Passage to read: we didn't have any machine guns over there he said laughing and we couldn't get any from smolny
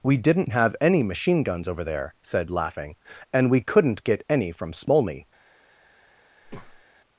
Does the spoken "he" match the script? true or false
false